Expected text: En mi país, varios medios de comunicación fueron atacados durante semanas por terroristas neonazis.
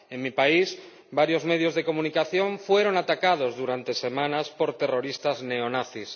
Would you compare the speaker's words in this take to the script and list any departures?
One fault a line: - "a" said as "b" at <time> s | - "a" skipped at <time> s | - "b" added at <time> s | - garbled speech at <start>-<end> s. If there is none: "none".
none